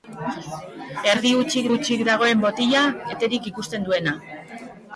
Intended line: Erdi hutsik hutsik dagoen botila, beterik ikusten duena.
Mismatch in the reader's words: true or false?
false